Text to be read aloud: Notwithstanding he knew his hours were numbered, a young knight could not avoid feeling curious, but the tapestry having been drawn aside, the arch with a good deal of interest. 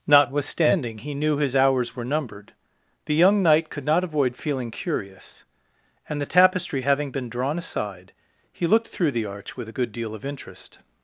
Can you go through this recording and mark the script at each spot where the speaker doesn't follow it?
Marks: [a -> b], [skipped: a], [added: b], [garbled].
Notwithstanding he knew his hours were numbered, [a -> the] young knight could not avoid feeling curious, [but -> and] the tapestry having been drawn aside, [added: he looked through] the arch with a good deal of interest.